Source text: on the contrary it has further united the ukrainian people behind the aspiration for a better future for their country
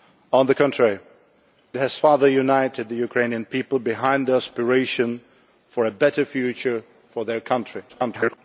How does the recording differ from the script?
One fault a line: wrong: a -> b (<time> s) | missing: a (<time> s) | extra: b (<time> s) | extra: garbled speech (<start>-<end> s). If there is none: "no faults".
missing: it (1.0 s)
extra: garbled speech (7.9-8.4 s)